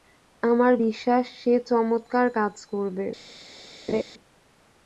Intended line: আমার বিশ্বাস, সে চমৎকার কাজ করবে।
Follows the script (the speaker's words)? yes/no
yes